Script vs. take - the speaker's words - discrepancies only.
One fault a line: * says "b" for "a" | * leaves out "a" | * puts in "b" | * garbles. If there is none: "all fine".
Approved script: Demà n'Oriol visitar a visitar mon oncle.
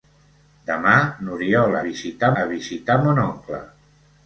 all fine